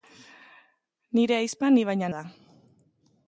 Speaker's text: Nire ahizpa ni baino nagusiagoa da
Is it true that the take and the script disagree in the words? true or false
true